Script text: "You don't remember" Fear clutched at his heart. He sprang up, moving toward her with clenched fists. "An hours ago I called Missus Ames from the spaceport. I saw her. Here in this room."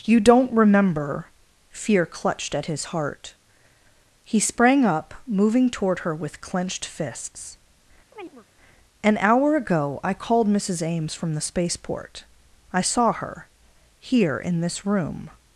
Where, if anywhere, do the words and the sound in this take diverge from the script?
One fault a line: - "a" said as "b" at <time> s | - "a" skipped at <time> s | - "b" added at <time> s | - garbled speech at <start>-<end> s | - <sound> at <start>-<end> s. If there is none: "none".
- chirp at 8.1-8.5 s
- "hours" said as "hour" at 9.2 s